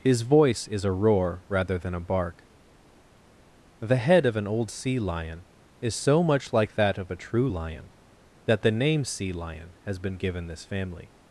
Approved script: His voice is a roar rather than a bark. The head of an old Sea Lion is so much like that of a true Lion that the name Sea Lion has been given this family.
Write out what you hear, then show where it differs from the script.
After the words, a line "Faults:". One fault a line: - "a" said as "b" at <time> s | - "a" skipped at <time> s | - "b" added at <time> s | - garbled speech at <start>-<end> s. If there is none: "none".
His voice is a roar rather than a bark. The head of an old Sea Lion is so much like that of a true Lion that the name Sea Lion has been given this family.
Faults:
none